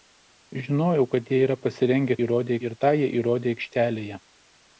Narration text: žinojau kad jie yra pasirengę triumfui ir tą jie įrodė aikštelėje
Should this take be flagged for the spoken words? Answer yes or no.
yes